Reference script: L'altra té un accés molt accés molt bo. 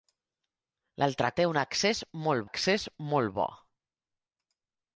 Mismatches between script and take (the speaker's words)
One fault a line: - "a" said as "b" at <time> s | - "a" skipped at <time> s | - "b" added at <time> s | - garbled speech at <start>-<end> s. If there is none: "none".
none